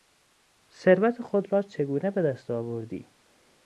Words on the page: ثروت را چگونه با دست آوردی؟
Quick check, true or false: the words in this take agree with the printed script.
false